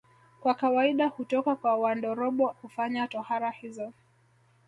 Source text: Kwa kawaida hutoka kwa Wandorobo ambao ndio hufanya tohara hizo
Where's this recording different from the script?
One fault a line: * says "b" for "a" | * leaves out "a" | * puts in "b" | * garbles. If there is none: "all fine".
* leaves out "ambao ndio"